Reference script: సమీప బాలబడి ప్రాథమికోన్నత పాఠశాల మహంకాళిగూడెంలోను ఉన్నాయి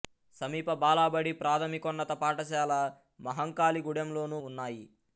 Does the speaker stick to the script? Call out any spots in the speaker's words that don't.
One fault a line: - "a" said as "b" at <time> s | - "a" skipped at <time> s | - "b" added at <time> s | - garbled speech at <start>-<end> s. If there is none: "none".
none